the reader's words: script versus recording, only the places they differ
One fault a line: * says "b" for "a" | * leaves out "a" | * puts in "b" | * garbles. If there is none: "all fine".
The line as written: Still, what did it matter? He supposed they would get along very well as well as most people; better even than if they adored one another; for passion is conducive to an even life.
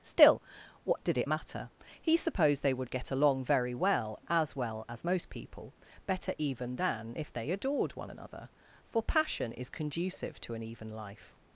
all fine